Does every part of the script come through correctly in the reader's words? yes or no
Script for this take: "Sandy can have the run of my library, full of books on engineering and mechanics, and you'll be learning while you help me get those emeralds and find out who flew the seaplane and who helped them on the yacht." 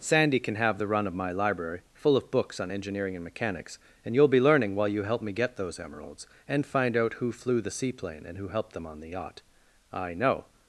no